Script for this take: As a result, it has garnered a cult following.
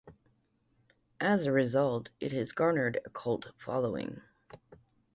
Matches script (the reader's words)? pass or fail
pass